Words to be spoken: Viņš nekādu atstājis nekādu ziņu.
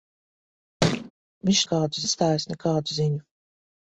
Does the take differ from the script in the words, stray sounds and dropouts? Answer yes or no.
yes